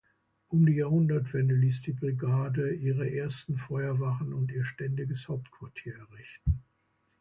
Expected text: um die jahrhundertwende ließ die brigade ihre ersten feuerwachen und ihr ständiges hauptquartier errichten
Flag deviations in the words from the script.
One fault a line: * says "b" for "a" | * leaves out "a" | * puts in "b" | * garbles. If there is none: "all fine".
all fine